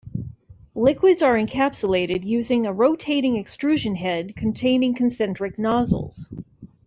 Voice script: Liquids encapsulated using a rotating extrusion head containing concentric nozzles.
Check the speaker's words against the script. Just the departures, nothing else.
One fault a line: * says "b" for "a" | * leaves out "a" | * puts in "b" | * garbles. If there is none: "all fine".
* puts in "are"